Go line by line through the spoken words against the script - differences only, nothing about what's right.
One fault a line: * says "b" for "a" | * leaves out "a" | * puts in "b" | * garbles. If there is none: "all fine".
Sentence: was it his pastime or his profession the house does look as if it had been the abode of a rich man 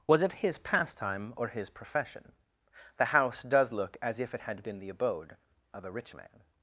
all fine